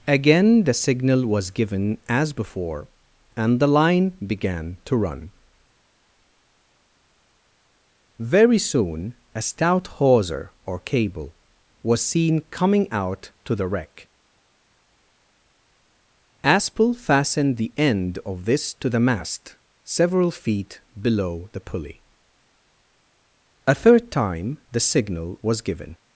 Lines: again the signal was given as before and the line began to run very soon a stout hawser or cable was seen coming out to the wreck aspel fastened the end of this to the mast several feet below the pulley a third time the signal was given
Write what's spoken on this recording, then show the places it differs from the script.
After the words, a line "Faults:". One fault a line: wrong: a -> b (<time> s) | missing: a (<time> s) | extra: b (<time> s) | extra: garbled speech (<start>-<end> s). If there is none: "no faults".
again the signal was given as before and the line began to run very soon a stout hawser or cable was seen coming out to the wreck aspel fastened the end of this to the mast several feet below the pulley a third time the signal was given
Faults:
no faults